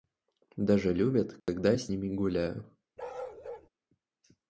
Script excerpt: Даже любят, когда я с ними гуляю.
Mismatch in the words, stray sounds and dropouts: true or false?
true